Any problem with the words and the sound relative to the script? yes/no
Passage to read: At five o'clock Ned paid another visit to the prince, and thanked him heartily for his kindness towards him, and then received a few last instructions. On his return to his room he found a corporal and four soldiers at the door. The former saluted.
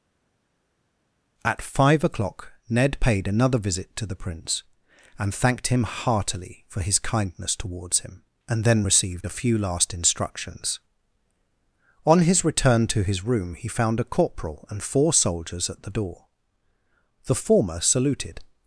no